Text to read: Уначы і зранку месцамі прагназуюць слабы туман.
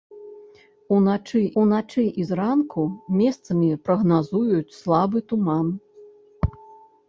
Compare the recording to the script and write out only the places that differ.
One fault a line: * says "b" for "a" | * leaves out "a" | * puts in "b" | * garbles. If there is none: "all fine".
* puts in "уначы"